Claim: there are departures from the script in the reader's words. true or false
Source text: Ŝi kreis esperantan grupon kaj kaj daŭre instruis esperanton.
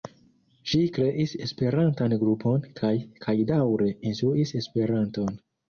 false